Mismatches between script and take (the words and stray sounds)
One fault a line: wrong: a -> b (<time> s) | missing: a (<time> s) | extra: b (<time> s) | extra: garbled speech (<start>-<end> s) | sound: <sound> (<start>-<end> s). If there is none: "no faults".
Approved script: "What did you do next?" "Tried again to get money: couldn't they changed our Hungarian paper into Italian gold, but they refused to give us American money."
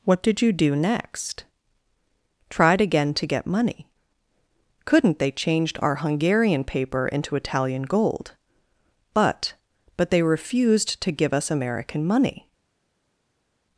extra: but (10.0 s)